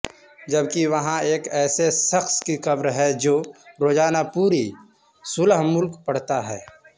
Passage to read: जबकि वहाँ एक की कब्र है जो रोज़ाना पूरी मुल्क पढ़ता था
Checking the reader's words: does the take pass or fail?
fail